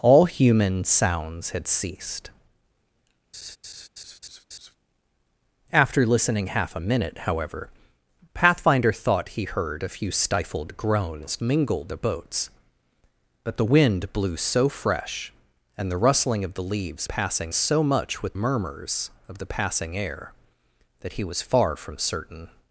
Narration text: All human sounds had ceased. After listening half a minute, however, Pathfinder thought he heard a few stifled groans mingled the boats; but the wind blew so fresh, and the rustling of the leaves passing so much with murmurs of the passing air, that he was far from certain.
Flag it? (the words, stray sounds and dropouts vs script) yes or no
yes